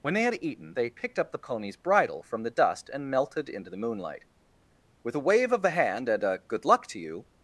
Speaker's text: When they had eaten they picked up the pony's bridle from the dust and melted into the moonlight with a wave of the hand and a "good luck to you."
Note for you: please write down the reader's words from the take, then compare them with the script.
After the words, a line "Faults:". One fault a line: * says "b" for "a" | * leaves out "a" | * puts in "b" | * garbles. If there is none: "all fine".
When they had eaten they picked up the pony's bridle from the dust and melted into the moonlight with a wave of the hand and a "good luck to you."
Faults:
all fine